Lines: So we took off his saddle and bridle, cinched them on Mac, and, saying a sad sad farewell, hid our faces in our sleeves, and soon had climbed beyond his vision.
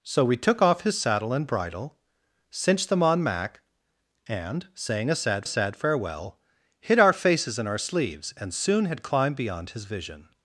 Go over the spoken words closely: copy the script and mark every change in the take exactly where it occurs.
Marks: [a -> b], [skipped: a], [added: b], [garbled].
So we took off his saddle and bridle, cinched them on Mac, and, saying a sad sad farewell, hid our faces in our sleeves, and soon had climbed beyond his vision.